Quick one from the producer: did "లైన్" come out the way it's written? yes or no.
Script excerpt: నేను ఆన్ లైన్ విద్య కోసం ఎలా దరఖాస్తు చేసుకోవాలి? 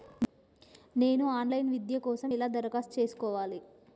yes